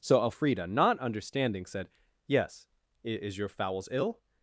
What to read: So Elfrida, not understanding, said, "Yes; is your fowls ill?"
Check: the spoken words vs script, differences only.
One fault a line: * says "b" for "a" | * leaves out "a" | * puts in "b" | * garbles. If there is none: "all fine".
all fine